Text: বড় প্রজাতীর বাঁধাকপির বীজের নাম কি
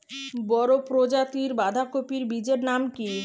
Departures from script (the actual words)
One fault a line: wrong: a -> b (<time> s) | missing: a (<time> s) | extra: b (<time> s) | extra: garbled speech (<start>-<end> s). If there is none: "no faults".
no faults